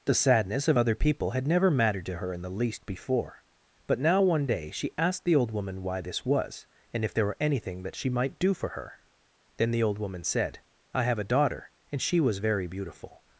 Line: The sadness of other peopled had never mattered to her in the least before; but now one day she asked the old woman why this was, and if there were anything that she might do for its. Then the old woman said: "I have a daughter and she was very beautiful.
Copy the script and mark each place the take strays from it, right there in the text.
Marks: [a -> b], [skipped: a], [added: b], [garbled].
The sadness of other [peopled -> people] had never mattered to her in the least before; but now one day she asked the old woman why this was, and if there were anything that she might do for [its. -> her] Then the old woman said: "I have a daughter and she was very beautiful.